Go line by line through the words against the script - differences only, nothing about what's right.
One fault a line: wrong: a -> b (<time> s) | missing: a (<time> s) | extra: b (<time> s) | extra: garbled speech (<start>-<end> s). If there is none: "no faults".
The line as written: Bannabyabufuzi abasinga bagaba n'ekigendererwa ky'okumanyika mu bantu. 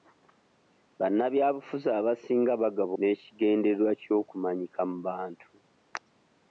no faults